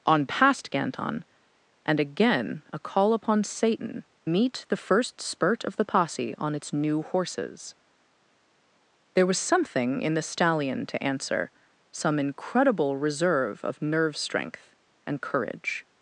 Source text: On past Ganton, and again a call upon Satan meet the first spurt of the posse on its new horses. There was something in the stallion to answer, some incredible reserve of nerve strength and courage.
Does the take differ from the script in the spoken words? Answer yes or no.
no